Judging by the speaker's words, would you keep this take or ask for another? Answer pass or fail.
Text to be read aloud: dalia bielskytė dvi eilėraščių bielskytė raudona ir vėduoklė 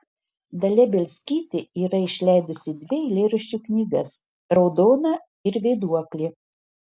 fail